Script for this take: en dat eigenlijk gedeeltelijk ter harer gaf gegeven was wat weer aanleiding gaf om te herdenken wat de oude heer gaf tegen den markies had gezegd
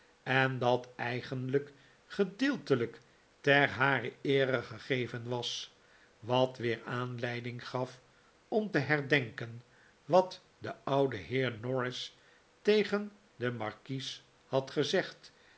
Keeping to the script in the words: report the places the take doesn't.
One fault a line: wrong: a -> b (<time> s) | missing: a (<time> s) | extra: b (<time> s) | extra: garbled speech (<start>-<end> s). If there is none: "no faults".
wrong: gaf -> eere (4.2 s)
wrong: gaf -> norris (11.6 s)